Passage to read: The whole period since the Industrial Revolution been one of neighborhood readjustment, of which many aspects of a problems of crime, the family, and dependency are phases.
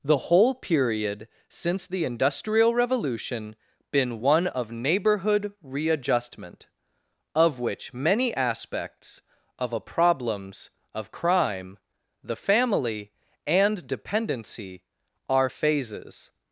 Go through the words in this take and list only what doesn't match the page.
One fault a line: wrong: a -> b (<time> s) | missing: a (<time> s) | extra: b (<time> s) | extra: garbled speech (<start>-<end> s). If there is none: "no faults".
no faults